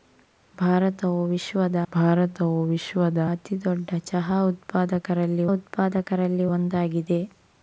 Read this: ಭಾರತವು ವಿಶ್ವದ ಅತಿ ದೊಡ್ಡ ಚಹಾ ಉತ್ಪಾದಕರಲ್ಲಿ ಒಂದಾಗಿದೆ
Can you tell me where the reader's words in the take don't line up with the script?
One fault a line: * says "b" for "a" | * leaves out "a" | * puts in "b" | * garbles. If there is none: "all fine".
* puts in "ಭಾರತವು ವಿಶ್ವದ"
* puts in "ಉತ್ಪಾದಕರಲ್ಲಿ"